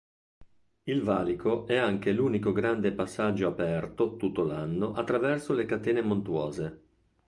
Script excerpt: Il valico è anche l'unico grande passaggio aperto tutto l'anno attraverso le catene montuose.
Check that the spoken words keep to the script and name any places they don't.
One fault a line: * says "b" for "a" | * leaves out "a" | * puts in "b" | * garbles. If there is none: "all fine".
all fine